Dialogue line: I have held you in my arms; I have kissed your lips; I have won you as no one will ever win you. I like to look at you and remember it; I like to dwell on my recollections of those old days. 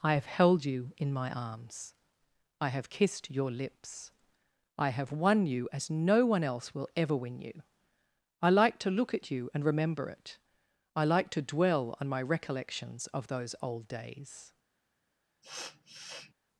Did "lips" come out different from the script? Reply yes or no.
no